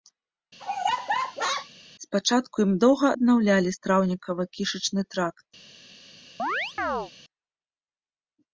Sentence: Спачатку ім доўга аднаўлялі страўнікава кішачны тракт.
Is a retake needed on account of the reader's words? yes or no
no